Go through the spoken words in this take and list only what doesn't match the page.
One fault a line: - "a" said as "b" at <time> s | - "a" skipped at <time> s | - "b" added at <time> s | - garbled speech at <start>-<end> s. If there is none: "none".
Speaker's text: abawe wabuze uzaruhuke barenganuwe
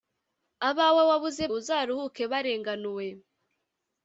none